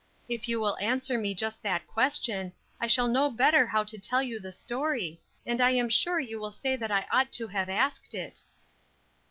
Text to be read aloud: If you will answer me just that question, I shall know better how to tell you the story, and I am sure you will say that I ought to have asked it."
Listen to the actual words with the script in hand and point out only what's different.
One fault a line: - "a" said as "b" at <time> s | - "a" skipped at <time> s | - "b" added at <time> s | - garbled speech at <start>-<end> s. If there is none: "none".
none